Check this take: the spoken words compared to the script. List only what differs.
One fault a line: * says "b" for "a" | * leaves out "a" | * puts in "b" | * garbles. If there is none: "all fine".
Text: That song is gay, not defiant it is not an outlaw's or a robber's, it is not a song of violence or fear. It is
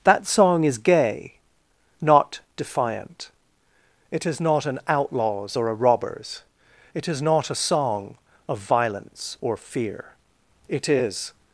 all fine